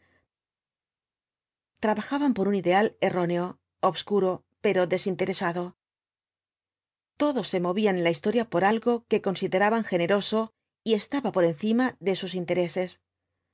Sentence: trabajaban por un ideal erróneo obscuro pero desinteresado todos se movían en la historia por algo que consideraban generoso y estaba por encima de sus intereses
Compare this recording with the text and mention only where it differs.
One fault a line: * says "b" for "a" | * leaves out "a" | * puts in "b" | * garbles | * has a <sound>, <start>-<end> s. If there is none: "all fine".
all fine